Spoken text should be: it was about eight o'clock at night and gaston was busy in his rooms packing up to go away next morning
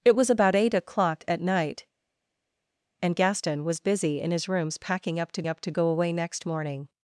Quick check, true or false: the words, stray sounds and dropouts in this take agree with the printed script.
false